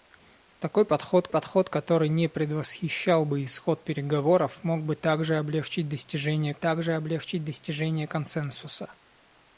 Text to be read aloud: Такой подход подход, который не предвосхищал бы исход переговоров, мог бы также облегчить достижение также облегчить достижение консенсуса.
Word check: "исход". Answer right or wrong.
right